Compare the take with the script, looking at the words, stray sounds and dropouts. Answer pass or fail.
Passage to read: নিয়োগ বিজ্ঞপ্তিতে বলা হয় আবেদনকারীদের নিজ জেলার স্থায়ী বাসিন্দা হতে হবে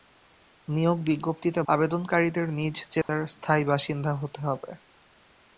fail